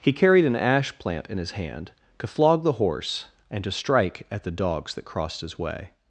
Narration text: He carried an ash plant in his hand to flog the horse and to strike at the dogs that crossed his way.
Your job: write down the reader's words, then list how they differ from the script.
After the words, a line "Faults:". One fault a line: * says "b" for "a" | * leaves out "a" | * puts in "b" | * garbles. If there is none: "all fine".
He carried an ash plant in his hand to flog the horse and to strike at the dogs that crossed his way.
Faults:
all fine